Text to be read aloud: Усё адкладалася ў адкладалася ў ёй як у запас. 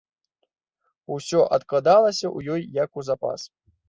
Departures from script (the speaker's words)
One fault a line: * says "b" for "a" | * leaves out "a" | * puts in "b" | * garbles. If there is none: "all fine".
* leaves out "адкладалася ў"